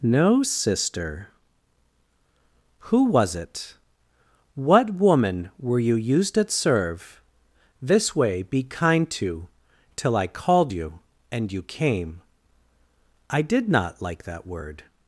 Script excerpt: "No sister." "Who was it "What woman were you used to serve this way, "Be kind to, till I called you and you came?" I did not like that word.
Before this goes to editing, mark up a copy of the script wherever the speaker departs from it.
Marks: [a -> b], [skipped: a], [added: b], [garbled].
"No sister." "Who was it "What woman were you used [to -> at] serve this way, "Be kind to, till I called you and you came?" I did not like that word.